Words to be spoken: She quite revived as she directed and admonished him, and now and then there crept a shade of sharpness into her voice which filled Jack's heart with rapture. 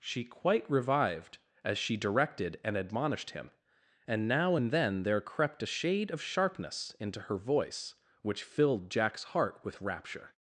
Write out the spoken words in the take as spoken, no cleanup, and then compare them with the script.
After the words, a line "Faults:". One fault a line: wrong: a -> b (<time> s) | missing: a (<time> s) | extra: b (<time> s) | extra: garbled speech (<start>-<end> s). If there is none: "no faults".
She quite revived as she directed and admonished him, and now and then there crept a shade of sharpness into her voice which filled Jack's heart with rapture.
Faults:
no faults